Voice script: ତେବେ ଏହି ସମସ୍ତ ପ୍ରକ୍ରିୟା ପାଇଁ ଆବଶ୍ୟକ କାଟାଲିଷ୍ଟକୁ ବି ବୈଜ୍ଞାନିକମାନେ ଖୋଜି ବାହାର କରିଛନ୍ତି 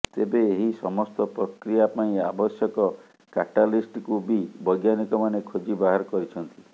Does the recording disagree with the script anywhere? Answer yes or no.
no